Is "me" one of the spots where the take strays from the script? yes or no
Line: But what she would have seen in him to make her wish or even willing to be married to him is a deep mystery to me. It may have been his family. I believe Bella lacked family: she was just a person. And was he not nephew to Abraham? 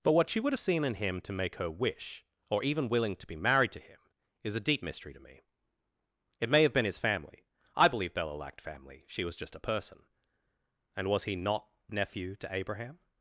no